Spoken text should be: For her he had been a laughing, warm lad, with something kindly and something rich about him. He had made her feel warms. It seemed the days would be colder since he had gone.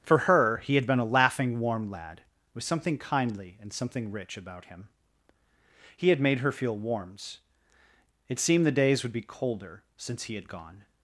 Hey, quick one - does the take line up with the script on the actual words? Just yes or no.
yes